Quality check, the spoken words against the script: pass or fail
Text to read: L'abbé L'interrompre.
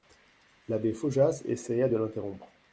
fail